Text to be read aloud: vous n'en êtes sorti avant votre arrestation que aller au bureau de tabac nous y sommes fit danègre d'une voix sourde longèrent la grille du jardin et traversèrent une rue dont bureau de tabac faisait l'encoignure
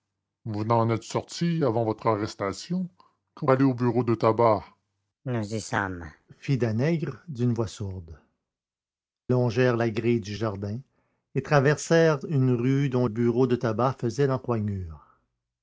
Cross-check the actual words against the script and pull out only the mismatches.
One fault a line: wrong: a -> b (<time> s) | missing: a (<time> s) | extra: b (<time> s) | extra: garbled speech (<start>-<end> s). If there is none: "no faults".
no faults